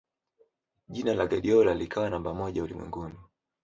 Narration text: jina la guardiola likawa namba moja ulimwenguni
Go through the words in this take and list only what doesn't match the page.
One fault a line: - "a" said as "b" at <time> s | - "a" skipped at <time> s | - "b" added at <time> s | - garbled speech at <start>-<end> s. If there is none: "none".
none